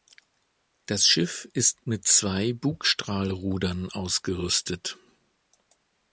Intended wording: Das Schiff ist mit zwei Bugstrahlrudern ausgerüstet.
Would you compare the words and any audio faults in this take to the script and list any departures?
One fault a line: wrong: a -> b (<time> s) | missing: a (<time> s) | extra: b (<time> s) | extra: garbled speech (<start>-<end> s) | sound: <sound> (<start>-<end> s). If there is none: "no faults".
no faults